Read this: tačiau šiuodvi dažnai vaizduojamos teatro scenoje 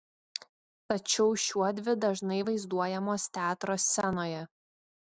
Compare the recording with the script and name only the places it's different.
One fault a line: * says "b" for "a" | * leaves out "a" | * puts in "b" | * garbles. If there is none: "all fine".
all fine